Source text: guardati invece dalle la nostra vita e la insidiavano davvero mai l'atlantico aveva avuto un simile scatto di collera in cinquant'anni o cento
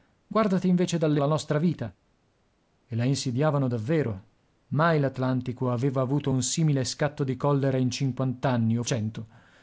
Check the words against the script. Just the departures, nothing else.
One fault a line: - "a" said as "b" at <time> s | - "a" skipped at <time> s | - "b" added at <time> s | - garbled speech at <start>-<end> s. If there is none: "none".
none